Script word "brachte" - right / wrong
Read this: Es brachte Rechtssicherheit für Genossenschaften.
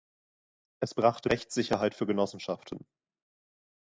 right